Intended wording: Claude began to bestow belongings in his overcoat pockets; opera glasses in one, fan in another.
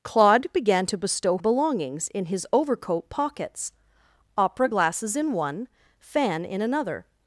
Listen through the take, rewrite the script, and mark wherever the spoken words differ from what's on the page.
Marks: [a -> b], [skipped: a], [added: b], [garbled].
Claude began to bestow belongings in his overcoat pockets; opera glasses in one, fan in another.